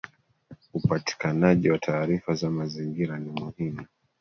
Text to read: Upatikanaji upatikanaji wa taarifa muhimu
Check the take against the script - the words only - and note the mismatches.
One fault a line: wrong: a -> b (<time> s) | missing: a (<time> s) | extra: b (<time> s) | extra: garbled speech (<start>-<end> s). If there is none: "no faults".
missing: upatikanaji (1.7 s)
extra: za mazingira ni (2.3 s)